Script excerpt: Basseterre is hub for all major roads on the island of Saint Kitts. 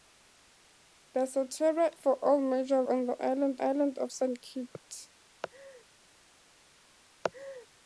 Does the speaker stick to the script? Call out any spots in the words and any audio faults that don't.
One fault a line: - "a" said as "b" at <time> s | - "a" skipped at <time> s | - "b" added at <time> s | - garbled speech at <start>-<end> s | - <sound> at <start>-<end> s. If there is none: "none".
- "is hub" skipped at 1.9 s
- "roads" skipped at 2.8 s
- "island" added at 3.6 s
- laugh at 5.4-5.8 s
- laugh at 7.2-7.7 s